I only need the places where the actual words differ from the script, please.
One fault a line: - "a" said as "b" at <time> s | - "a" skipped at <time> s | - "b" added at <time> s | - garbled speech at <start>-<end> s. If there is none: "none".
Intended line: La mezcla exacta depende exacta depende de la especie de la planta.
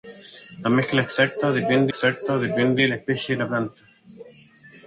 none